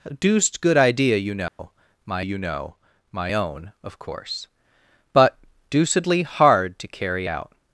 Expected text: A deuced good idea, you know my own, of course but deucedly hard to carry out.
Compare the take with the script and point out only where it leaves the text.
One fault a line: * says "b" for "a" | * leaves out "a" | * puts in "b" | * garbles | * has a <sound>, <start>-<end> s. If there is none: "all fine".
* has a dropout, 1.5-1.6 s
* puts in "you know my"